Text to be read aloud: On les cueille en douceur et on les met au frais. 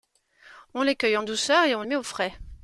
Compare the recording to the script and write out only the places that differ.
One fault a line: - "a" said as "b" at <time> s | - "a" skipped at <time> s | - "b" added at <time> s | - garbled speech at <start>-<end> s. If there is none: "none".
- "les" skipped at 1.8 s